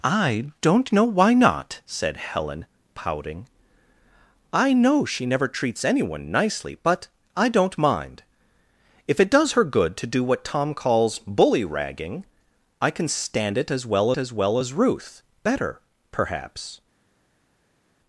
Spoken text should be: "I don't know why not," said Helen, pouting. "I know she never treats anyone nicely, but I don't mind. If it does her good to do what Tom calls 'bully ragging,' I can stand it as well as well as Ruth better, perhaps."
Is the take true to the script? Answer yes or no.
yes